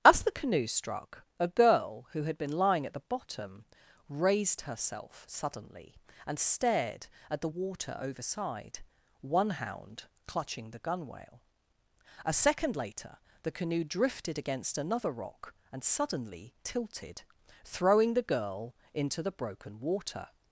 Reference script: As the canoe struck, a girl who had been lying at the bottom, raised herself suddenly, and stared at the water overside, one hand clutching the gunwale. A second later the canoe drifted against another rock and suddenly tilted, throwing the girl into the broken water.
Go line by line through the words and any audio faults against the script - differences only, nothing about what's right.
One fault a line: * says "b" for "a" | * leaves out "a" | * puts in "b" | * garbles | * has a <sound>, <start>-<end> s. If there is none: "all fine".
* says "hound" for "hand"